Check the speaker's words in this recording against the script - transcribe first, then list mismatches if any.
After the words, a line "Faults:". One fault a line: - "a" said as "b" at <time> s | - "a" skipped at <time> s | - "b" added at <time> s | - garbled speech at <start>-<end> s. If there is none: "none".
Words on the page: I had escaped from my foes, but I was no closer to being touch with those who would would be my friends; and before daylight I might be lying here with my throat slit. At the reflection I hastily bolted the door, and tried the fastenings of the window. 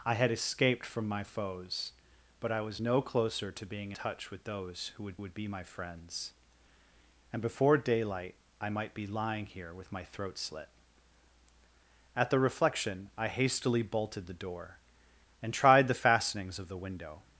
I had escaped from my foes, but I was no closer to being touch with those who would would be my friends; and before daylight I might be lying here with my throat slit. At the reflection I hastily bolted the door, and tried the fastenings of the window.
Faults:
none